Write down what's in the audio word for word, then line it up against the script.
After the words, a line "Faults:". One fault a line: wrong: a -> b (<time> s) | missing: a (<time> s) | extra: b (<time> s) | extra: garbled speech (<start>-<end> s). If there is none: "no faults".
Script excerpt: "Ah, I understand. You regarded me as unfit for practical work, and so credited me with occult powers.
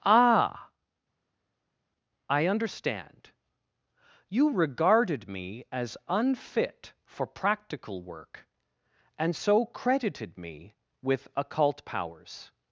"Ah, I understand. You regarded me as unfit for practical work, and so credited me with occult powers.
Faults:
no faults